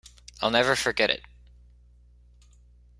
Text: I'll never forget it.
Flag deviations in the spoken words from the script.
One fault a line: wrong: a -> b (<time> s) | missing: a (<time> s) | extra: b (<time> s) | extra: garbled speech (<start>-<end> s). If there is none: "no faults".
no faults